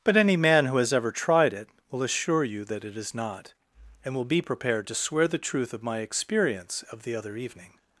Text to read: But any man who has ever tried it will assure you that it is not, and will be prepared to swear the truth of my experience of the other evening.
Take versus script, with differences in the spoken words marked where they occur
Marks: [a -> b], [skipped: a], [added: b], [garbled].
But any man who has ever tried it will assure you that it is not, and will be prepared to swear the truth of my experience of the other evening.